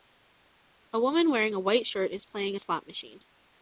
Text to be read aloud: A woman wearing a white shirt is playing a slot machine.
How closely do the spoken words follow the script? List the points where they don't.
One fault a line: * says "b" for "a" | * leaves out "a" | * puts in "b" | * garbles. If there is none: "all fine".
all fine